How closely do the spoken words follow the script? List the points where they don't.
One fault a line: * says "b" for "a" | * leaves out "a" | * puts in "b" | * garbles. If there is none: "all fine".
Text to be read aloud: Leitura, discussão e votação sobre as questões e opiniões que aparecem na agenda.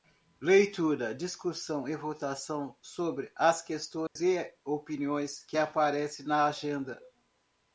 all fine